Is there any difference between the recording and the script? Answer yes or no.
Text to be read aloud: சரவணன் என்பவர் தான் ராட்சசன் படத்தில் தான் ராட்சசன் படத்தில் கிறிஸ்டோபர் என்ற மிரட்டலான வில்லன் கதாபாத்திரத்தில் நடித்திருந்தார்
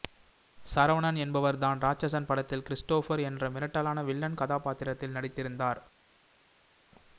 yes